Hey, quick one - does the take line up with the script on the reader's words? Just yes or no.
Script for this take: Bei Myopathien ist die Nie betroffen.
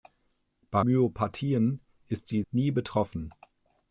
yes